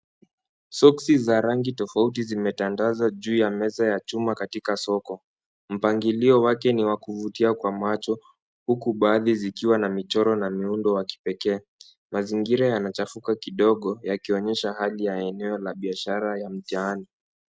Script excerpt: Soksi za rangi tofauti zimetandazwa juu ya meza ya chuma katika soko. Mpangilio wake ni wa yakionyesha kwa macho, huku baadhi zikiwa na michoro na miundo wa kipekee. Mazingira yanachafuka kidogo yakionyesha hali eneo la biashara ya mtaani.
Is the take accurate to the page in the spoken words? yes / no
no